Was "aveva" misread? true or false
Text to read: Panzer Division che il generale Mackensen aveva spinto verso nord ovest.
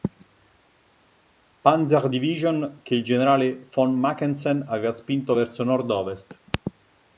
false